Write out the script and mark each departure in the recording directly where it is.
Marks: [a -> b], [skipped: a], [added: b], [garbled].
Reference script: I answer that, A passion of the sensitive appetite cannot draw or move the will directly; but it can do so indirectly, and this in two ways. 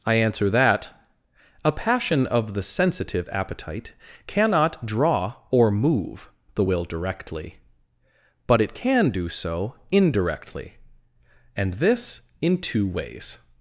I answer that, A passion of the sensitive appetite cannot draw or move the will directly; but it can do so indirectly, and this in two ways.